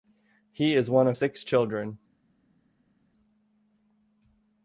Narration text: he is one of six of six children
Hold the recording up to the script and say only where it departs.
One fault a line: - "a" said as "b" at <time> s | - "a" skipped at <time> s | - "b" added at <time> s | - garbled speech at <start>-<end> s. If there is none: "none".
- "of six" skipped at 1.4 s